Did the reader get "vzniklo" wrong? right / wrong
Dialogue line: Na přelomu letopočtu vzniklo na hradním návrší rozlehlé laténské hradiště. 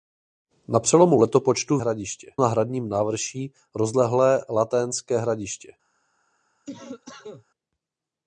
wrong